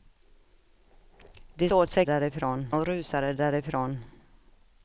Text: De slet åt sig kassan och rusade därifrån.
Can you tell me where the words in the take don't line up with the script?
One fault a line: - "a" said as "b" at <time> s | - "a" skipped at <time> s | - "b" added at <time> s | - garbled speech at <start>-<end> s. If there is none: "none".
- "slet" skipped at 1.7 s
- "kassan" said as "därifrån" at 2.0 s